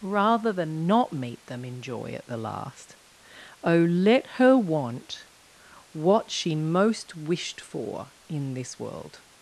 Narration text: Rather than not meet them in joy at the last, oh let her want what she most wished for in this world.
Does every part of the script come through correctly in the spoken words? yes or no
yes